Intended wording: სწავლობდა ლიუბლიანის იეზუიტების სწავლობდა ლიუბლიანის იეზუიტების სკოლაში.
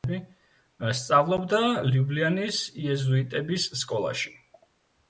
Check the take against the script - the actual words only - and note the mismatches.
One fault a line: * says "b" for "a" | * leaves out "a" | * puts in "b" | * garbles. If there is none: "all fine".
* leaves out "სწავლობდა ლიუბლიანის იეზუიტების"